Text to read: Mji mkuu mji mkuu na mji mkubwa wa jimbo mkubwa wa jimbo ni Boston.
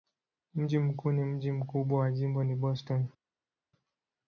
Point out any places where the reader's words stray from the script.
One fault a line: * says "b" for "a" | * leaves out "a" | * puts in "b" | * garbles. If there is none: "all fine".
* leaves out "mji mkuu"
* leaves out "mkubwa wa jimbo"